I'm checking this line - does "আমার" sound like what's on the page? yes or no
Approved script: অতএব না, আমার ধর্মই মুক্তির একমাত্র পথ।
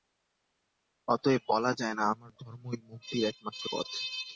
yes